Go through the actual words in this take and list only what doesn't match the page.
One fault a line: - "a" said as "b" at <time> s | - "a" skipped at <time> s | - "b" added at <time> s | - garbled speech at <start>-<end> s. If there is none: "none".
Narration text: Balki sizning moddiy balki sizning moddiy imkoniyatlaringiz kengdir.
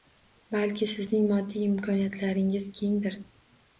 - "balki sizning moddiy" skipped at 1.7 s